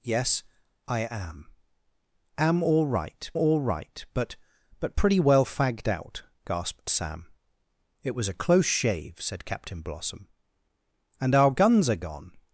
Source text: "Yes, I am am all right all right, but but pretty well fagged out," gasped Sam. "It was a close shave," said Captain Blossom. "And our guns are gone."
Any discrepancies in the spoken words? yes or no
no